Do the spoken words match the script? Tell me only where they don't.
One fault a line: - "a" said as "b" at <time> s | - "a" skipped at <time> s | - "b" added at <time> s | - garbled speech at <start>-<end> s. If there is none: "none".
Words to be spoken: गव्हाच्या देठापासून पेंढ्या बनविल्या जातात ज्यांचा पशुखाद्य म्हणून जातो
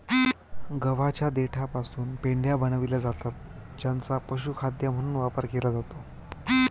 - "वापर केला" added at 5.2 s